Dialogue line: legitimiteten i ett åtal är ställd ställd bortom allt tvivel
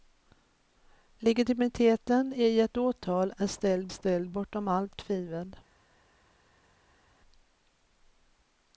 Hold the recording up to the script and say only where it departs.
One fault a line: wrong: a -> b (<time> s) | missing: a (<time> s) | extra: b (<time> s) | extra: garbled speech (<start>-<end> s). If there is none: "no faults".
no faults